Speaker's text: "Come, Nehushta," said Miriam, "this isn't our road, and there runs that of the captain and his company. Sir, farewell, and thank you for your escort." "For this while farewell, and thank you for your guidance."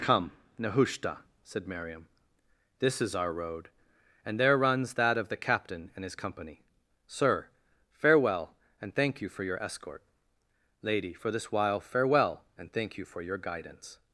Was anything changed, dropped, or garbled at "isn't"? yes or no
yes